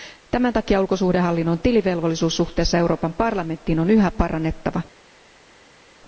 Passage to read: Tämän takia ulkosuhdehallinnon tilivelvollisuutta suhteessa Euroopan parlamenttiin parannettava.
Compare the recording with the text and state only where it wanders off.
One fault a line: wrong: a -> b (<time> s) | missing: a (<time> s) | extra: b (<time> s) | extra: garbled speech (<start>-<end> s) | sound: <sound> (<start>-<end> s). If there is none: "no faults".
extra: on yhä (3.8 s)